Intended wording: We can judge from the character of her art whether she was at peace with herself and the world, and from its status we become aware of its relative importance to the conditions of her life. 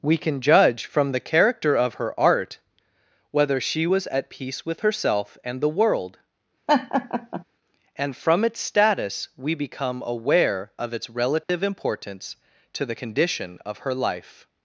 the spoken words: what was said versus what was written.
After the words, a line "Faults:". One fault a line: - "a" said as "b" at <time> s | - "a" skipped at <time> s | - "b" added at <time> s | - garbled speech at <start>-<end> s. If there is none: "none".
We can judge from the character of her art whether she was at peace with herself and the world, and from its status we become aware of its relative importance to the condition of her life.
Faults:
- "conditions" said as "condition" at 12.9 s